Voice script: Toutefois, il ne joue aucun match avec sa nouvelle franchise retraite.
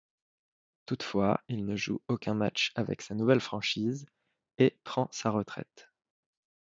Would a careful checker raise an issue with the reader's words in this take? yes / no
yes